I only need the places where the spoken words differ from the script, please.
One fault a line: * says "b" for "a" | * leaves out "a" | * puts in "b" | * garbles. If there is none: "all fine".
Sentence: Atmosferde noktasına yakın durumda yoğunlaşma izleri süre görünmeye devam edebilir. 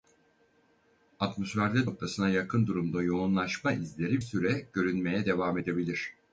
all fine